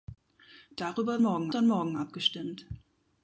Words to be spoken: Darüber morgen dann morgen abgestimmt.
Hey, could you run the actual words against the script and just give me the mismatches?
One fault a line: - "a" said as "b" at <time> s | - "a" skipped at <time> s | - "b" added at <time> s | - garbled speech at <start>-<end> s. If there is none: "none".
none